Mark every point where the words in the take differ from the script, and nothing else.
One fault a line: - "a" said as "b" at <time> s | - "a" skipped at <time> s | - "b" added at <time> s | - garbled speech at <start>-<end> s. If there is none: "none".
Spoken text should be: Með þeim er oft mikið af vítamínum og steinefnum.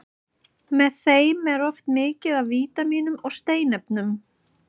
none